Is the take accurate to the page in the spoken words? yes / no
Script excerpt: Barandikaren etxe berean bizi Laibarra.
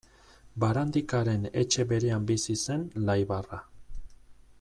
no